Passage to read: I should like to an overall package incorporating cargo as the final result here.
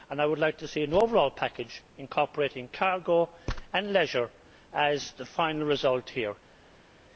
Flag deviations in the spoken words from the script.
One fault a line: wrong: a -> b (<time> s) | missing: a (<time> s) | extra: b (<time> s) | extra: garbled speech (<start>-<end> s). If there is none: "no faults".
wrong: should -> would (0.2 s)
extra: see (0.7 s)
extra: and leisure (3.7 s)